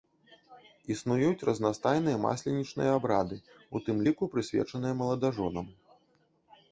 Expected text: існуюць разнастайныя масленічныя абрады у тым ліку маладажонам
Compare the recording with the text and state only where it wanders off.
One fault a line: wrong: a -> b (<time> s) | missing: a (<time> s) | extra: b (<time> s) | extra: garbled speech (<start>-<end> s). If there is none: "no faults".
extra: прысвечаныя (4.3 s)